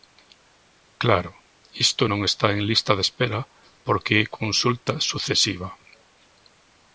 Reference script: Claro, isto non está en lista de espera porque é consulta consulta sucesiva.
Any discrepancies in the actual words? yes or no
yes